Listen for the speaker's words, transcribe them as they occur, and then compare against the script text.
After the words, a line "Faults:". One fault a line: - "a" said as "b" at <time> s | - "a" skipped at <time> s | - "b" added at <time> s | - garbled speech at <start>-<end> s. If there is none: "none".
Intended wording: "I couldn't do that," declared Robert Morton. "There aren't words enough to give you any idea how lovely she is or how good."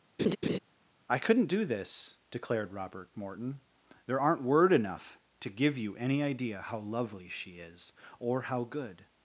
"I couldn't do this," declared Robert Morton. "There aren't word enough to give you any idea how lovely she is or how good."
Faults:
- "that" said as "this" at 1.6 s
- "words" said as "word" at 4.4 s